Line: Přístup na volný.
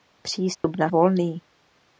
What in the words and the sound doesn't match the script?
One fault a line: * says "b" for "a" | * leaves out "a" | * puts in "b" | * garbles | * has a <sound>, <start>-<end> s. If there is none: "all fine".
* has a dropout, 0.5-0.6 s